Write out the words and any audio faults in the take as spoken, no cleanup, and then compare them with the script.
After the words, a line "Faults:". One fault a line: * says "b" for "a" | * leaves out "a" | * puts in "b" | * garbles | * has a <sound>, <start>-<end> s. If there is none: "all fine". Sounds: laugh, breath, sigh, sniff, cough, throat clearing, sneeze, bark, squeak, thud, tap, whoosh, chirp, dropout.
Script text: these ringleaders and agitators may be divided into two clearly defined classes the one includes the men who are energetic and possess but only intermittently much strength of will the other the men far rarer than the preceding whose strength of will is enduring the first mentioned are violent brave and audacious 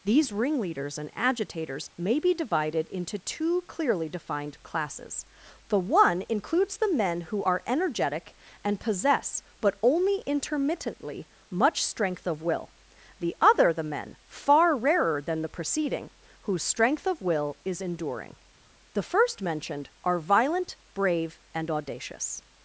these ringleaders and agitators may be divided into two clearly defined classes the one includes the men who are energetic and possess but only intermittently much strength of will the other the men far rarer than the preceding whose strength of will is enduring the first mentioned are violent brave and audacious
Faults:
all fine